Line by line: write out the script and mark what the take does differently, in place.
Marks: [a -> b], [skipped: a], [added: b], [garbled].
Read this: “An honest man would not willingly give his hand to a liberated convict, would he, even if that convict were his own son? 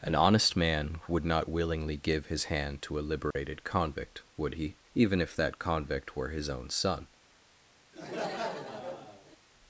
“An honest man would not willingly give his hand to a liberated convict, would he, even if that convict were his own son?